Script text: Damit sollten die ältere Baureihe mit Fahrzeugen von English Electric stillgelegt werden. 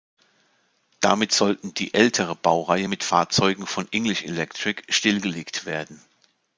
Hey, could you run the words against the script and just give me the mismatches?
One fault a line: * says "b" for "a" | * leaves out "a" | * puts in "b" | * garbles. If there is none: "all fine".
all fine